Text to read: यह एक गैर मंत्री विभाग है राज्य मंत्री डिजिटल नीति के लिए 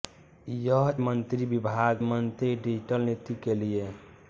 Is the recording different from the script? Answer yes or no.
yes